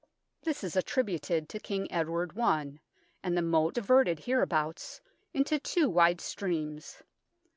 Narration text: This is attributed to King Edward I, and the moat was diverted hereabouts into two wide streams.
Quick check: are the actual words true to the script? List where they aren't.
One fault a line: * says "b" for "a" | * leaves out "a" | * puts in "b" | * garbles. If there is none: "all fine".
* leaves out "was"